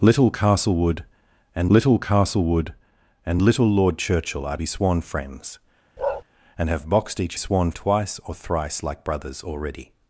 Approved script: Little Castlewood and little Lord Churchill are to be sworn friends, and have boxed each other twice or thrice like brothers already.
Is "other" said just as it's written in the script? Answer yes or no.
no